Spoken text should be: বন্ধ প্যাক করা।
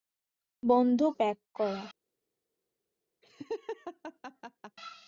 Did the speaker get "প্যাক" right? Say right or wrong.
right